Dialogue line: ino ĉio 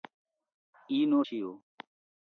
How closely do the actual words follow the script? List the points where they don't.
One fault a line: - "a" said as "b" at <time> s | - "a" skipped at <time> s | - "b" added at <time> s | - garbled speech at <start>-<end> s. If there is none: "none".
none